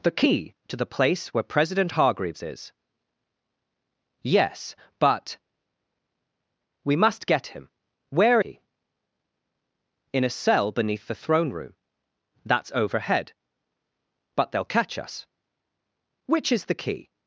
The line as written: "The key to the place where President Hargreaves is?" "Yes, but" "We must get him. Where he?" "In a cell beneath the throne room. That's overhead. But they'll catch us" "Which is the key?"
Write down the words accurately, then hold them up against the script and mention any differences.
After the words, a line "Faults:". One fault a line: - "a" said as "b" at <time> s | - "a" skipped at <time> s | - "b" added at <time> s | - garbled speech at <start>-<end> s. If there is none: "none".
"The key to the place where President Hargreaves is?" "Yes, but" "We must get him. Where he?" "In a cell beneath the throne room. That's overhead. But they'll catch us" "Which is the key?"
Faults:
none